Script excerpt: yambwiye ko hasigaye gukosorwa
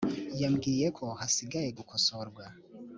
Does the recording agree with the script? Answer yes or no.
yes